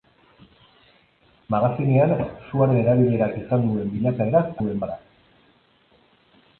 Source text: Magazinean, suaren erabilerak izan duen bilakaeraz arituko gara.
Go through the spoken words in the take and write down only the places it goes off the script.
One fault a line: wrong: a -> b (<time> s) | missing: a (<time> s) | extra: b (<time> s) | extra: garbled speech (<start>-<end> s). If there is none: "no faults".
wrong: arituko -> duen (4.6 s)